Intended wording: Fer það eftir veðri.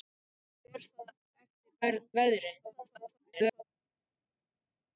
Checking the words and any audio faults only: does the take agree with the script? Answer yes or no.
no